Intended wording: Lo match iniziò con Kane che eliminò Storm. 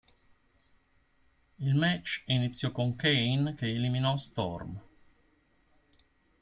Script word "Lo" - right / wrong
wrong